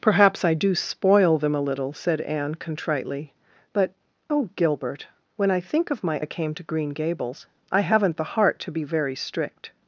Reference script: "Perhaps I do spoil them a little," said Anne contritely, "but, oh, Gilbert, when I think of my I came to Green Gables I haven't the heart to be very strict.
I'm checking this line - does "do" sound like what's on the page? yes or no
yes